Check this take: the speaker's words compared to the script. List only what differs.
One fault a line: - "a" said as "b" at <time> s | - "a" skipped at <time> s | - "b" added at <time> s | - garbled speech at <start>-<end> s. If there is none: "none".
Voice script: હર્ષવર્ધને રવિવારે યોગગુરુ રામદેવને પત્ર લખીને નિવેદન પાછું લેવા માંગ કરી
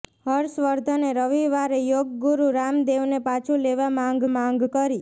- "પત્ર લખીને નિવેદન" skipped at 3.2 s
- "માંગ" added at 4.3 s